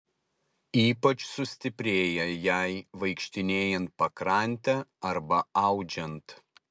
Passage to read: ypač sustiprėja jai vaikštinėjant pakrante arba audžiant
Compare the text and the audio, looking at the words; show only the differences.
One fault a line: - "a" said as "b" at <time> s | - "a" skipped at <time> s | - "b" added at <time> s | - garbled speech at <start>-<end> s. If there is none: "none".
none